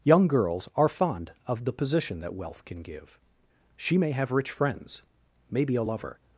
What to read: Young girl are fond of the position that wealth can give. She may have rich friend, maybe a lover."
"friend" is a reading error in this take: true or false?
true